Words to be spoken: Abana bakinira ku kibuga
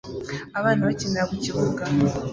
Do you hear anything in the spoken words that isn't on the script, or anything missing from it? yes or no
no